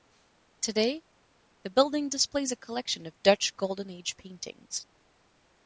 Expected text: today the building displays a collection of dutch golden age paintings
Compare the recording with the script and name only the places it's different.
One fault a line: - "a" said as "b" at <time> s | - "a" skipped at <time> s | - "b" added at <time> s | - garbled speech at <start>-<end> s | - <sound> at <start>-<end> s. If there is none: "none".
none